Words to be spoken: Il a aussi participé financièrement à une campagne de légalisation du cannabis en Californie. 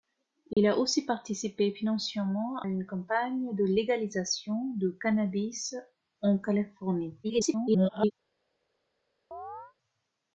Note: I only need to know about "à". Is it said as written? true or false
false